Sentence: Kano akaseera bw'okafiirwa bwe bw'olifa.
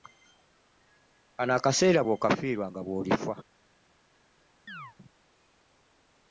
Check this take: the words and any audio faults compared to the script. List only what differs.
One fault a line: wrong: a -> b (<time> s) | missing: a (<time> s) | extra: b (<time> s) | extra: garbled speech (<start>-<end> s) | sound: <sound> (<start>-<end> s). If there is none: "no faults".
wrong: bwe -> nga (2.7 s)
sound: chirp (4.7-5.0 s)